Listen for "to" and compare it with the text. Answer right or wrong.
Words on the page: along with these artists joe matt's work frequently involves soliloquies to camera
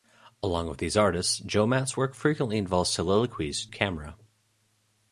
wrong